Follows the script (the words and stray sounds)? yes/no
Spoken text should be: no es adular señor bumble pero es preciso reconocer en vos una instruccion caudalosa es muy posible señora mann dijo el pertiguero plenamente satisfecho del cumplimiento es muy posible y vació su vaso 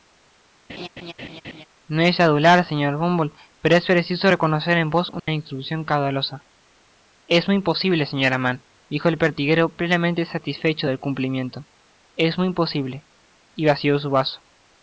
no